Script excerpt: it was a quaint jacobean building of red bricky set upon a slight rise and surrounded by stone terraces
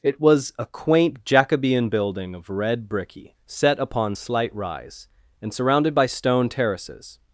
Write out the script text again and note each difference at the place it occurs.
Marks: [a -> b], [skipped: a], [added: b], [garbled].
it was a quaint jacobean building of red bricky set upon [skipped: a] slight rise and surrounded by stone terraces